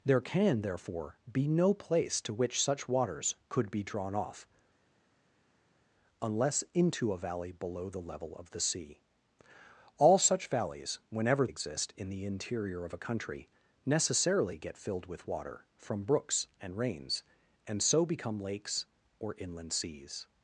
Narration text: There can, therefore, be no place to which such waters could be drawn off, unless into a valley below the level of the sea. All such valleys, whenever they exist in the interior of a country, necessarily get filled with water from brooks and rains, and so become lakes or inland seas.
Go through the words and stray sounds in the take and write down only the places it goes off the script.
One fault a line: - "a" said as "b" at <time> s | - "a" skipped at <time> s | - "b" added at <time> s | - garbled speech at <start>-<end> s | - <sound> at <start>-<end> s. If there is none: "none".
- "they" skipped at 11.5 s